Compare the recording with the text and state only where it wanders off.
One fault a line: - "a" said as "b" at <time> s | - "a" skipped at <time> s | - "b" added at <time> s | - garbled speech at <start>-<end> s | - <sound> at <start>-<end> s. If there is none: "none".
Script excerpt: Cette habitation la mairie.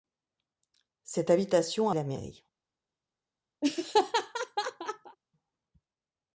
- laugh at 3.6-5.2 s